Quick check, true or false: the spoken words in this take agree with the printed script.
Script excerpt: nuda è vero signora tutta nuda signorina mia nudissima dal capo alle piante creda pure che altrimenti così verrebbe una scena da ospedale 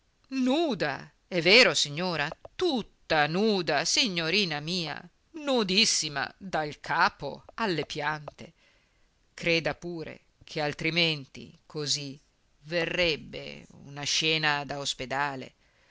true